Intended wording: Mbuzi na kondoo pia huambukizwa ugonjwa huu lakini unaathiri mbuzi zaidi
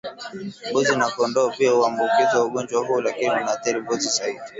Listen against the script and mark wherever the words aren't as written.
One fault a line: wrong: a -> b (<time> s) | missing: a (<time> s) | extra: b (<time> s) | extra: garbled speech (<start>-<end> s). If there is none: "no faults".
no faults